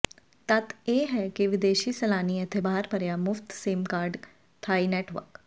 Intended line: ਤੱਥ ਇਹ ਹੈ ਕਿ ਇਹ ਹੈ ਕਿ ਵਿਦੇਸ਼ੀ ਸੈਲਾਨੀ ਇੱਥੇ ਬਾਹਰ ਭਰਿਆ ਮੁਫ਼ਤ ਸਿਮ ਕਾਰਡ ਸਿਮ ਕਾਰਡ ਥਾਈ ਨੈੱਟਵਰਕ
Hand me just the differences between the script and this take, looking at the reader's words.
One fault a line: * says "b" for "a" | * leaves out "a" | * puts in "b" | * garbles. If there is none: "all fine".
* leaves out "ਇਹ ਹੈ ਕਿ"
* leaves out "ਸਿਮ ਕਾਰਡ"